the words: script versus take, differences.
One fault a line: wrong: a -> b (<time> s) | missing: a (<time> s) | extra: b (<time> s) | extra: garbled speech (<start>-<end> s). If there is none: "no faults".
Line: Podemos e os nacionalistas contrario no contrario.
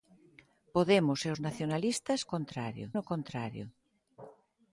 no faults